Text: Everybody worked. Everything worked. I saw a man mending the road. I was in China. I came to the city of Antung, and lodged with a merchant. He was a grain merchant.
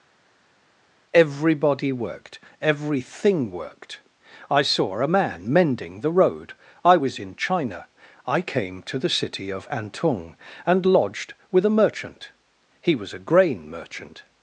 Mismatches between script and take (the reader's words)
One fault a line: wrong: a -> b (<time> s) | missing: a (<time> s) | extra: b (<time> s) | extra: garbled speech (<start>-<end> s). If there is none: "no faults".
no faults